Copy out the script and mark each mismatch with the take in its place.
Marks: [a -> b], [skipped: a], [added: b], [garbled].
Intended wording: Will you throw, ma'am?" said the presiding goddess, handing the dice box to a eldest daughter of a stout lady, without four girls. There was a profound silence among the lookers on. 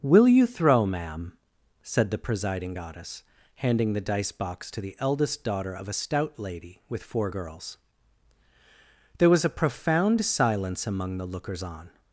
Will you throw, ma'am?" said the presiding goddess, handing the dice box to [a -> the] eldest daughter of a stout lady, [without -> with] four girls. There was a profound silence among the lookers on.